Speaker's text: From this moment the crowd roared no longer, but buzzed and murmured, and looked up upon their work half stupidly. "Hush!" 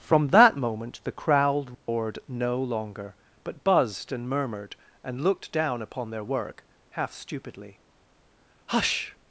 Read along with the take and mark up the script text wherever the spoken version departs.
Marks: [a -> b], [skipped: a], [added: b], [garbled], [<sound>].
From [this -> that] moment the crowd roared [dropout] no longer, but buzzed and murmured, and looked [up -> down] upon their work half stupidly. "Hush!"